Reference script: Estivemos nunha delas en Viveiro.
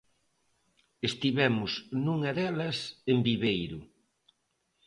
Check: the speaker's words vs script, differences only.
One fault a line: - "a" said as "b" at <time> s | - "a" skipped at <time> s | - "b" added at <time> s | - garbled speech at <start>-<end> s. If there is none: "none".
none